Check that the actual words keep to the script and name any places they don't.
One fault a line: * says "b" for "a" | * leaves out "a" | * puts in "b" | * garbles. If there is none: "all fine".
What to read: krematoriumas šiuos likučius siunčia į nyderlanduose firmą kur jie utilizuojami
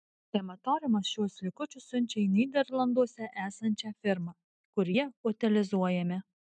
* puts in "esančią"